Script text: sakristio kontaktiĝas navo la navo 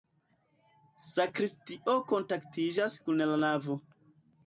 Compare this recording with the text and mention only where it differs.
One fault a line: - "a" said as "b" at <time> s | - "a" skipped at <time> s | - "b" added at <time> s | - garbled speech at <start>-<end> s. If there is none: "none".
- "navo" said as "kun" at 3.0 s